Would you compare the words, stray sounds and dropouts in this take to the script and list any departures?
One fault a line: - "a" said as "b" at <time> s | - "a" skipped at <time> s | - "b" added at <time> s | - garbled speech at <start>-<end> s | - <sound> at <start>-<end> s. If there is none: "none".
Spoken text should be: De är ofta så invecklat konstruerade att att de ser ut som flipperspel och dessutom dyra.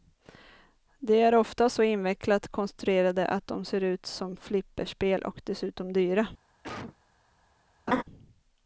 - "att" skipped at 3.5 s
- cough at 6.6-7.0 s
- laugh at 7.9-8.0 s